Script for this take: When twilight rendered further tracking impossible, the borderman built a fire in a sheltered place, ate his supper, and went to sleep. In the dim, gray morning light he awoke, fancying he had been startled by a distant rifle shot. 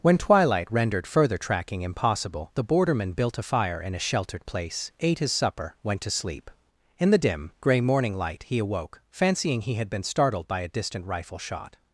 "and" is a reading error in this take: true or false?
true